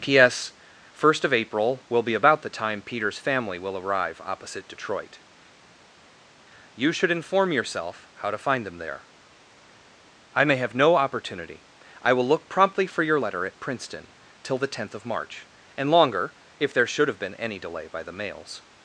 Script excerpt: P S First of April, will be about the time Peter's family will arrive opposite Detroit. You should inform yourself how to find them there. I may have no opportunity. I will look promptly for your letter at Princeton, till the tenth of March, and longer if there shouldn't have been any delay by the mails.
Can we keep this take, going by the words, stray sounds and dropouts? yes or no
no